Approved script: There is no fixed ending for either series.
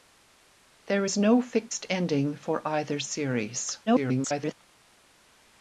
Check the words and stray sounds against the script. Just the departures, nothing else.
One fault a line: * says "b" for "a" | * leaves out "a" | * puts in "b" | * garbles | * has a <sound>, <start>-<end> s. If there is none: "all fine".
* garbles